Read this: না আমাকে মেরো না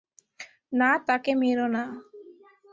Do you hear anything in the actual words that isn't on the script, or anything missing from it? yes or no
yes